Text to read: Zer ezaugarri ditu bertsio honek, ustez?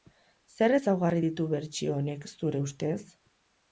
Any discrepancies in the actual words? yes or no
yes